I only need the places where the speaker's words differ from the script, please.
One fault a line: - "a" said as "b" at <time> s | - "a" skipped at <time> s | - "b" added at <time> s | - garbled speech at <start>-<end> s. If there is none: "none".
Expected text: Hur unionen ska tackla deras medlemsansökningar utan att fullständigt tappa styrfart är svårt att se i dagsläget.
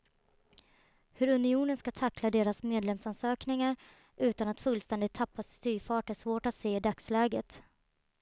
none